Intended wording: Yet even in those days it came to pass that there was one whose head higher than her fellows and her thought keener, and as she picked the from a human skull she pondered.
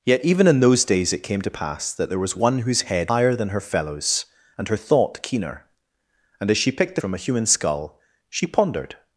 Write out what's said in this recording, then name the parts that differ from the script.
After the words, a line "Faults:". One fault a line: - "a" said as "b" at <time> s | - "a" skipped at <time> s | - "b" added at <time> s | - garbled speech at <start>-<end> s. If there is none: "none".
Yet even in those days it came to pass that there was one whose head higher than her fellows and her thought keener, and as she picked the from a human skull she pondered.
Faults:
none